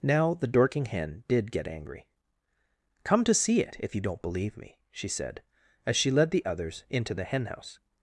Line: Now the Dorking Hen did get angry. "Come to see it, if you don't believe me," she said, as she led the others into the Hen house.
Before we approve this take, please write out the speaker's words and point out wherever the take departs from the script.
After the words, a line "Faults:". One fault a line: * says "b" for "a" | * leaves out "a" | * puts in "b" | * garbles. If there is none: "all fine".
Now the Dorking Hen did get angry. "Come to see it, if you don't believe me," she said, as she led the others into the Hen house.
Faults:
all fine